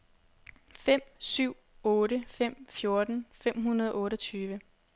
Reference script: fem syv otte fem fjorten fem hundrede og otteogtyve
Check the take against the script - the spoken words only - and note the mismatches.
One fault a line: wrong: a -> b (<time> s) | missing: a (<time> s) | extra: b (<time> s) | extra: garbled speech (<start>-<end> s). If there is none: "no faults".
no faults